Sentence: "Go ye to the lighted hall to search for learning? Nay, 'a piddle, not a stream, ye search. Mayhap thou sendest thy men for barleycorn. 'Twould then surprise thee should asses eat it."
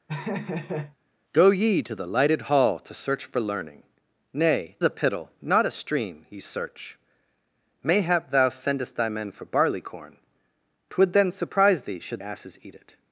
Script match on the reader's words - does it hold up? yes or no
yes